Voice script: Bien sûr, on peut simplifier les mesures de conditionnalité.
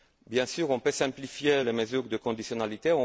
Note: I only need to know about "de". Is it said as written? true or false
true